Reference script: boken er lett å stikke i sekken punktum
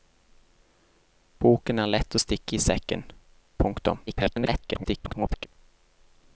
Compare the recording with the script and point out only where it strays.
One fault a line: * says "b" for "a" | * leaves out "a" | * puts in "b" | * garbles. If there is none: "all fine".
* garbles